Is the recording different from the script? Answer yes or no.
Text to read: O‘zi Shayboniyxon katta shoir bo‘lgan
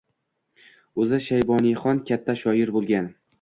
no